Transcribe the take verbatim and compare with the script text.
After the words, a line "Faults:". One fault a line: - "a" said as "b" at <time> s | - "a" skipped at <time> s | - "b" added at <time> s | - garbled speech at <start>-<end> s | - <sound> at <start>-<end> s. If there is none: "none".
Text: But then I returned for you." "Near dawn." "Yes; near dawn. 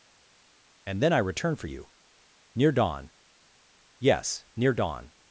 And then I return for you." "Near dawn." "Yes; near dawn.
Faults:
- "But" said as "And" at 0.9 s
- "returned" said as "return" at 1.2 s